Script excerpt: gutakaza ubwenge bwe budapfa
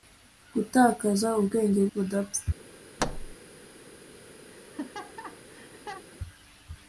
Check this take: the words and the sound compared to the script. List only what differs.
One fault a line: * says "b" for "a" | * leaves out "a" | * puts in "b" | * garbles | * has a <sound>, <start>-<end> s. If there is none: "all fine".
* leaves out "bwe"
* has a thud, 3.0-3.4 s
* has a laugh, 4.5-6.0 s